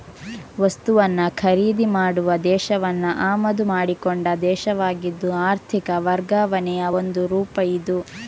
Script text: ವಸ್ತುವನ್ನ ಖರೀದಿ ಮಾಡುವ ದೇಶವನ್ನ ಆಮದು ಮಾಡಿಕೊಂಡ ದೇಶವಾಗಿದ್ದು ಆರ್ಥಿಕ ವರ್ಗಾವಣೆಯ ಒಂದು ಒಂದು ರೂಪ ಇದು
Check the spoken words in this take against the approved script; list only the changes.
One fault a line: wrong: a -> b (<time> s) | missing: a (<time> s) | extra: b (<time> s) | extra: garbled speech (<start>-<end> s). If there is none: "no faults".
missing: ಒಂದು (7.2 s)